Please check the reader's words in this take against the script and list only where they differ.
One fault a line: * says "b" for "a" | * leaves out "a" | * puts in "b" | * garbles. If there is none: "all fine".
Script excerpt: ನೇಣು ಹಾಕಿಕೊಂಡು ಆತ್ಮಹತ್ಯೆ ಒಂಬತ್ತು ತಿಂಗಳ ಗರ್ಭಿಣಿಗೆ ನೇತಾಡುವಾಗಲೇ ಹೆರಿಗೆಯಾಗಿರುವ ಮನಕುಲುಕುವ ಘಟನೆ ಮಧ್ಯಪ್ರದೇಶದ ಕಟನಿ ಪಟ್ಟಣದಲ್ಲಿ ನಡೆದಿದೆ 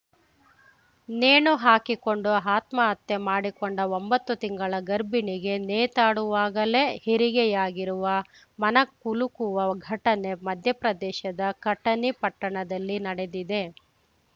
* puts in "ಮಾಡಿಕೊಂಡ"